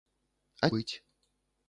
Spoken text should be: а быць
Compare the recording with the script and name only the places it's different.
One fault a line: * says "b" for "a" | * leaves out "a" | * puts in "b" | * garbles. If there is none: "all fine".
all fine